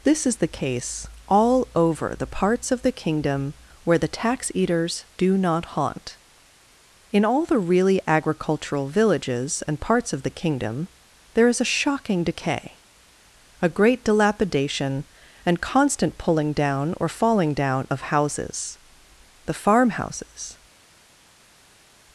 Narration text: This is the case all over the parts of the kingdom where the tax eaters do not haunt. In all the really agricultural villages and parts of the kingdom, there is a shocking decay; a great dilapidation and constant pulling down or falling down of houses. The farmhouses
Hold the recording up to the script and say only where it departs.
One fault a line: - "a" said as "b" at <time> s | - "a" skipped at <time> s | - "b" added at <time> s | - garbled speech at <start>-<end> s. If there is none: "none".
none